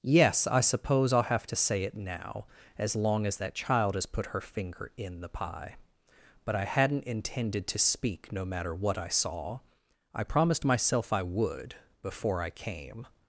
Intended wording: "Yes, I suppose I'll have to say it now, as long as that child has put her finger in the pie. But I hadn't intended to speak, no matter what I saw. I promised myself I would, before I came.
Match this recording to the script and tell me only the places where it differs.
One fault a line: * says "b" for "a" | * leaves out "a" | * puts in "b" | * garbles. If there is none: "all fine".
all fine